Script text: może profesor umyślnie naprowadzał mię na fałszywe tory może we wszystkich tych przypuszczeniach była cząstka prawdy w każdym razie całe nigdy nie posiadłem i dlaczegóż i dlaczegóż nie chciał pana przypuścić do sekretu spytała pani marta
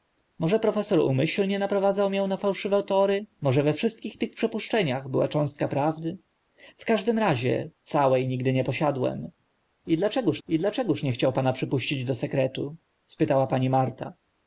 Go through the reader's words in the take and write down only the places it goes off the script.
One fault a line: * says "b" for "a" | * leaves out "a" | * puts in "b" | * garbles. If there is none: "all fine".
all fine